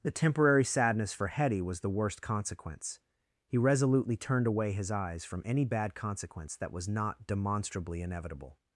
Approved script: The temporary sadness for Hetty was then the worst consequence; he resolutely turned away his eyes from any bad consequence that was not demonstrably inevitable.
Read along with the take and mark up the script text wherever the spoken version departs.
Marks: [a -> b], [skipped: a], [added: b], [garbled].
The temporary sadness for Hetty was [skipped: then] the worst consequence; he resolutely turned away his eyes from any bad consequence that was not demonstrably inevitable.